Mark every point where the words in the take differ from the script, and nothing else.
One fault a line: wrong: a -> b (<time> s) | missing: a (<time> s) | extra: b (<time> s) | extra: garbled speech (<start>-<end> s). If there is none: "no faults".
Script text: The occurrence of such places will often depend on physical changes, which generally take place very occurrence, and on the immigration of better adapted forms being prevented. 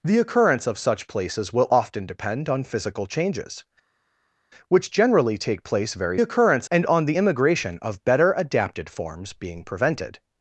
no faults